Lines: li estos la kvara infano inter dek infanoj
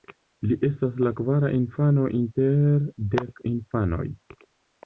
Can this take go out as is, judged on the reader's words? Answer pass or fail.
fail